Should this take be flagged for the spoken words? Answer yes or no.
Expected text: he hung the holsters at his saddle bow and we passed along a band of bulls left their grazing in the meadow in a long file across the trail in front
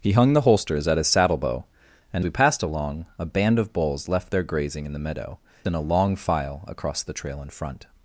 no